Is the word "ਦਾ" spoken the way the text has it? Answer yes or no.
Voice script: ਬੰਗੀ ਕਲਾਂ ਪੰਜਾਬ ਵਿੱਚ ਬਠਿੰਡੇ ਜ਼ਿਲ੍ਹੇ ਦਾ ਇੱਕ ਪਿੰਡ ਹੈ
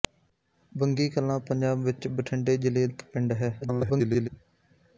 no